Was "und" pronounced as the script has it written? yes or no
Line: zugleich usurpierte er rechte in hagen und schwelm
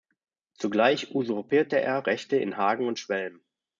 yes